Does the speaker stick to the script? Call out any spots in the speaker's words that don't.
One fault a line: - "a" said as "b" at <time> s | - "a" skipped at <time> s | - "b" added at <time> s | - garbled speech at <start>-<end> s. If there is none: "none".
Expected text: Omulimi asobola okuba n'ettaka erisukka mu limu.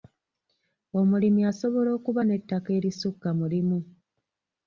none